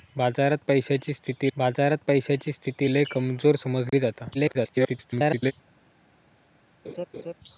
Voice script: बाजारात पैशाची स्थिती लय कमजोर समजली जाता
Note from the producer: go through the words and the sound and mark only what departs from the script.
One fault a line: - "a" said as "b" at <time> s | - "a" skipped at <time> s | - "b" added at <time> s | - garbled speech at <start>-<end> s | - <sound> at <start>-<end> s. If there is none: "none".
- "बाजारात पैशाची स्थिती" added at 1.6 s
- dropout at 3.9-3.9 s
- garbled speech at 4.3-5.5 s
- laugh at 6.8-7.3 s